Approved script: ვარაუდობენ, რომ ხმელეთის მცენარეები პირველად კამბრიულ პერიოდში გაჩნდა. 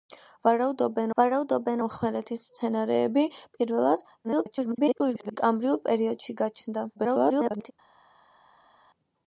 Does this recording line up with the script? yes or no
no